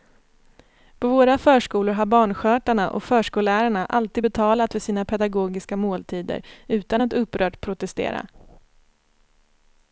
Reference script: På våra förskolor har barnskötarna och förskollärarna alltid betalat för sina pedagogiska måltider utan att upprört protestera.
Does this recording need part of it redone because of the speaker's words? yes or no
no